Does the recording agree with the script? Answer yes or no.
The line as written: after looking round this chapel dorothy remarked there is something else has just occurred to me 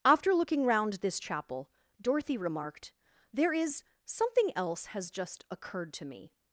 yes